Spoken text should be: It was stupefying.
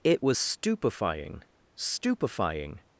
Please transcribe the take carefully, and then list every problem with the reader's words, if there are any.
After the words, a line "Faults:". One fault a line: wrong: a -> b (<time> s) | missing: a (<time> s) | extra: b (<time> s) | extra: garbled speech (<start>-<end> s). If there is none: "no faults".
It was stupefying stupefying.
Faults:
extra: stupefying (1.7 s)